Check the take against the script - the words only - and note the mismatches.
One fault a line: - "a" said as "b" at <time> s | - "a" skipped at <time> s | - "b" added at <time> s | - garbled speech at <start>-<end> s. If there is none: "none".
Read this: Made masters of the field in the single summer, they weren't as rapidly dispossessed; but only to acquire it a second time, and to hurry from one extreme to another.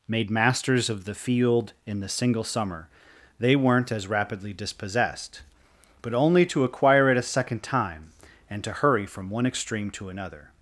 none